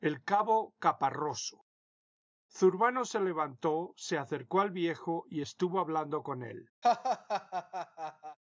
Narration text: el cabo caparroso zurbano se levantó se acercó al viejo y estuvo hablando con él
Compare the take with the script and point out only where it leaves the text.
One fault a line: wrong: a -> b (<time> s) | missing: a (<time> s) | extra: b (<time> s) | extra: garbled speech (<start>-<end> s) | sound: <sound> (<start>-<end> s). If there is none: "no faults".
sound: laugh (6.8-8.4 s)